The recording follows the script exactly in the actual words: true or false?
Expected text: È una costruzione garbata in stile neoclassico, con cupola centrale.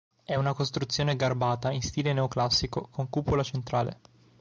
true